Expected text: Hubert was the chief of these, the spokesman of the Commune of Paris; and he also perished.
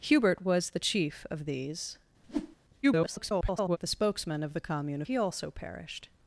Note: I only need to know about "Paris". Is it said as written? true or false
false